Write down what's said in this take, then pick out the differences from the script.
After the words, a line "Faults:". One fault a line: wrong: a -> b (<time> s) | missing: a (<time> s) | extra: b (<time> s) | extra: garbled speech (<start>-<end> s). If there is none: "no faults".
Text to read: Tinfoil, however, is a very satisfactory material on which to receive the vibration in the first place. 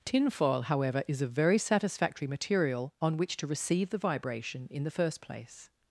Tinfoil, however, is a very satisfactory material on which to receive the vibration in the first place.
Faults:
no faults